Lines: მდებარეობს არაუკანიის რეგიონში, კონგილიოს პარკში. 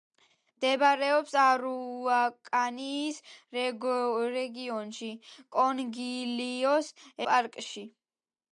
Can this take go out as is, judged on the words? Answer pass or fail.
pass